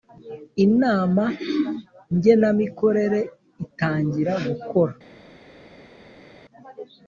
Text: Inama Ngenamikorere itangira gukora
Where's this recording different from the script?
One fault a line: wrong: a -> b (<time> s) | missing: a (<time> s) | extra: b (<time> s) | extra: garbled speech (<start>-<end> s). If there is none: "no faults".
no faults